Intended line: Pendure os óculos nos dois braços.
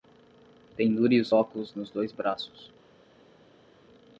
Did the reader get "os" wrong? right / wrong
right